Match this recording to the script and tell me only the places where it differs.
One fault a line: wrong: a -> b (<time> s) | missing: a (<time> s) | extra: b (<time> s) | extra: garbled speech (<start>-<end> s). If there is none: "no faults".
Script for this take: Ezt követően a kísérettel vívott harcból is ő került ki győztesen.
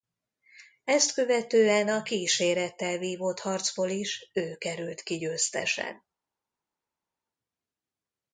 no faults